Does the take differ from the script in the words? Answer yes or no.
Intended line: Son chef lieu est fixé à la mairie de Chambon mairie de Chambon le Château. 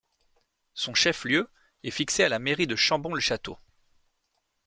yes